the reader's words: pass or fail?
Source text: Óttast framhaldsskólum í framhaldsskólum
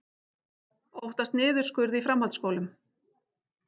fail